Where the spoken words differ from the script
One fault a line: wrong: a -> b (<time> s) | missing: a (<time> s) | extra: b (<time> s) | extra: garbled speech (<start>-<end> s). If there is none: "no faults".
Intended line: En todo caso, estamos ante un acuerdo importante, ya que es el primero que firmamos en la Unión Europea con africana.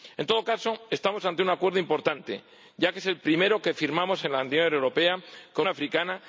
no faults